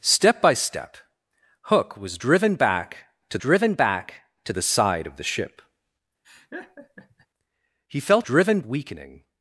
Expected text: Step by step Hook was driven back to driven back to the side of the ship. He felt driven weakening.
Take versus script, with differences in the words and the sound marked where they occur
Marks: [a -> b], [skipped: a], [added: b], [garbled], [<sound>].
Step by step Hook was driven back to driven back to the side of the ship. [laugh] He felt driven weakening.